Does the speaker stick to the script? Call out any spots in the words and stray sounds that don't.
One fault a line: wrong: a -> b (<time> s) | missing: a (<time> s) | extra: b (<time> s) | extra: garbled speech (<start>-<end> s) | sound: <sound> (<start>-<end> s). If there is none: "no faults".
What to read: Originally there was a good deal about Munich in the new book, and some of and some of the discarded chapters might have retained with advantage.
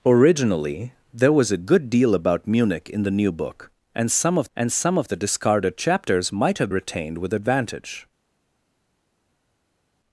no faults